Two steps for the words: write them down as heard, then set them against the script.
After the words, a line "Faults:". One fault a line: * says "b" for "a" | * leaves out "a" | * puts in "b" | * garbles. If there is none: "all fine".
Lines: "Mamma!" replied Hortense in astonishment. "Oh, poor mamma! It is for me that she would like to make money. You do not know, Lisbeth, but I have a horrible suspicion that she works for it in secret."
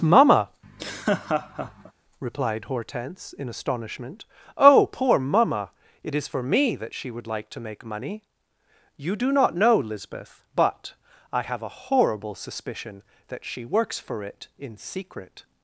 "Mamma!" replied Hortense in astonishment. "Oh, poor mamma! It is for me that she would like to make money. You do not know, Lisbeth, but I have a horrible suspicion that she works for it in secret."
Faults:
all fine